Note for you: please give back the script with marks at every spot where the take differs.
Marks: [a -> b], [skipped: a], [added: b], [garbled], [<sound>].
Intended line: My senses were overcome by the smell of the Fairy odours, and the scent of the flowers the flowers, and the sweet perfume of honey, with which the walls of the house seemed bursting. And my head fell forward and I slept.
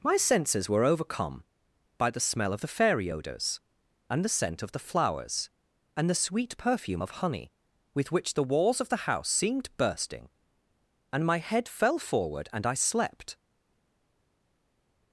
My senses were overcome by the smell of the Fairy odours, and the scent of the flowers [skipped: the flowers,] and the sweet perfume of honey, with which the walls of the house seemed bursting. And my head fell forward and I slept.